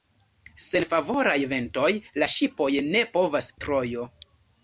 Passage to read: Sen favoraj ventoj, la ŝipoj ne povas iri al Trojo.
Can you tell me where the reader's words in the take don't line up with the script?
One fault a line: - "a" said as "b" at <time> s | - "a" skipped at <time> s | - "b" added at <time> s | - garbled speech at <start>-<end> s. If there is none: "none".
- "iri al" skipped at 3.5 s